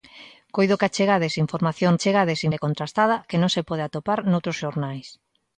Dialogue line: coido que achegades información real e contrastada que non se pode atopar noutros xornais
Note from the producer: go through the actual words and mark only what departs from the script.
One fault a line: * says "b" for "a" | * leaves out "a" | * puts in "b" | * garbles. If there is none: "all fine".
* says "achegades" for "real"